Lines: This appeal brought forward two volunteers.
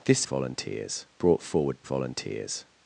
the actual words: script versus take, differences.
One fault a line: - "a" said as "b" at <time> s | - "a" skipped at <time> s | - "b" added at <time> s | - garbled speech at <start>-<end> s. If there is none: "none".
- "appeal" said as "volunteers" at 0.2 s
- "two" skipped at 1.8 s